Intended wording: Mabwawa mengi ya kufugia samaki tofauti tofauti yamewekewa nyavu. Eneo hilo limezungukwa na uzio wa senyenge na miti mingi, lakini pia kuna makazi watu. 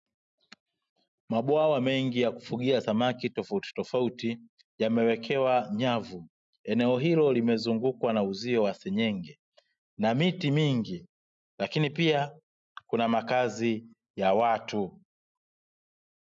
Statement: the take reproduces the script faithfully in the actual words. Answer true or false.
false